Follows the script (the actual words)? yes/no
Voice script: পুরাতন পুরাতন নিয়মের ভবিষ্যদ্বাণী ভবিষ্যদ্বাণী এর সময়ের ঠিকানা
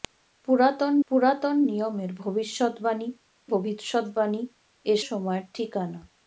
yes